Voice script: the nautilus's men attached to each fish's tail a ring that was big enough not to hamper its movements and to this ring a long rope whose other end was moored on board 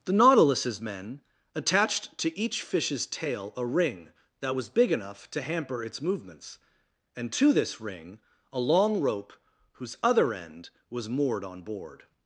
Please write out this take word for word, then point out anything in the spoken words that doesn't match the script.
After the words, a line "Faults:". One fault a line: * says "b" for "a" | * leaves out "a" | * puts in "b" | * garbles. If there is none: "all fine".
the nautilus's men attached to each fish's tail a ring that was big enough to hamper its movements and to this ring a long rope whose other end was moored on board
Faults:
* leaves out "not"